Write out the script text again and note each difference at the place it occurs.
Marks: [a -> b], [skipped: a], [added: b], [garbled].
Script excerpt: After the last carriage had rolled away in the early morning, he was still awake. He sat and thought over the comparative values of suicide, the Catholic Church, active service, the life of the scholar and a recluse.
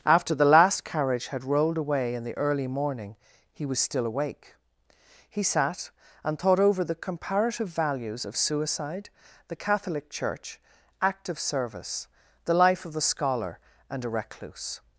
After the last carriage had rolled away in the early morning, he was still awake. He sat and thought over the comparative values of suicide, the Catholic Church, active service, the life of the scholar and a recluse.